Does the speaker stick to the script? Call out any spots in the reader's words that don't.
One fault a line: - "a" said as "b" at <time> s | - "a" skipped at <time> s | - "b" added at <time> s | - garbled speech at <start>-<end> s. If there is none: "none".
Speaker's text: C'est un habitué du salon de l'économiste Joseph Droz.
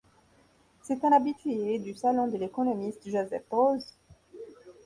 none